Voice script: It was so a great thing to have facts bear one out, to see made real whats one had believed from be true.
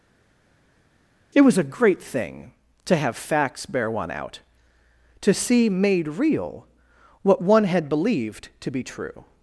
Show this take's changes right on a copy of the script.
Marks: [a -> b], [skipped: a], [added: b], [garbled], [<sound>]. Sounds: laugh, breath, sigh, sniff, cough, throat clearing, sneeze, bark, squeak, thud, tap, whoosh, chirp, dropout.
It was [skipped: so] a great thing to have facts bear one out, to see made real [whats -> what] one had believed [from -> to] be true.